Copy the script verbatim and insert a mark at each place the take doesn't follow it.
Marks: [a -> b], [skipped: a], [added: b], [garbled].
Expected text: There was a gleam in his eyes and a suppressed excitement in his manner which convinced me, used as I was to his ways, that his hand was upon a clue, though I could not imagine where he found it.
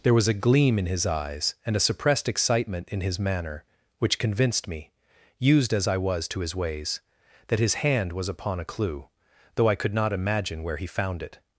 There was a gleam in his eyes and a suppressed excitement in his manner which convinced me, used as I was to his ways, that his hand was upon a clue, though I could not imagine where he found it.